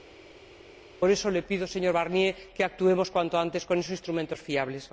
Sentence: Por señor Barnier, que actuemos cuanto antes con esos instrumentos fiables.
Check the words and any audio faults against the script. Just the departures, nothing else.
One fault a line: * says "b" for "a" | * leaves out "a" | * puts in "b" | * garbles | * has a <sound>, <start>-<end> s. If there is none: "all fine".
* puts in "eso le pido"